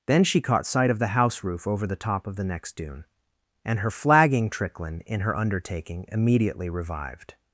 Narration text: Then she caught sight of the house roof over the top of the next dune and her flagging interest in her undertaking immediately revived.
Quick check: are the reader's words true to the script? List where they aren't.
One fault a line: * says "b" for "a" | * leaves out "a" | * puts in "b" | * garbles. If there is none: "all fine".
* says "tricklin" for "interest"